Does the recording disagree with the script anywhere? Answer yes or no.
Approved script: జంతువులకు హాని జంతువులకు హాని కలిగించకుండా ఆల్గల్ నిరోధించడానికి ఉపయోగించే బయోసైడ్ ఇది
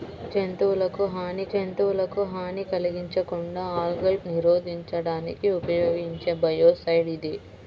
no